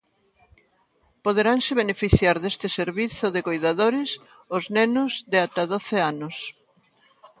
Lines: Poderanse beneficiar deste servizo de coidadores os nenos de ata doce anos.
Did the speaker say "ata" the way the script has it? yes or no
yes